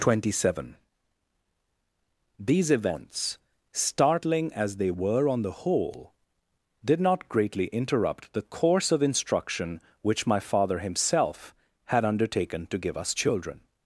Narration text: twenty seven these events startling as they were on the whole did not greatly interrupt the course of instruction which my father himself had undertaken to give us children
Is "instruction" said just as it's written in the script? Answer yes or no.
yes